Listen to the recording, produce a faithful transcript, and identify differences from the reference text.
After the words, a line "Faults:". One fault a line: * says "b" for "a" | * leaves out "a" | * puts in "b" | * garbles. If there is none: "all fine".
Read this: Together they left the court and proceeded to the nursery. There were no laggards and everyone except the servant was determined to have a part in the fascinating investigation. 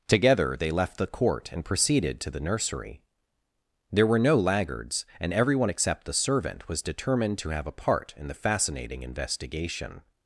Together they left the court and proceeded to the nursery. There were no laggards and everyone except the servant was determined to have a part in the fascinating investigation.
Faults:
all fine